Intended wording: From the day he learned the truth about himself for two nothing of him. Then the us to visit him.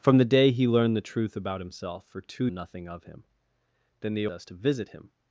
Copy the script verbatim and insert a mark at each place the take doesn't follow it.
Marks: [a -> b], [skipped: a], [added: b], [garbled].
From the day he learned the truth about himself for two nothing of him. Then the us to visit him.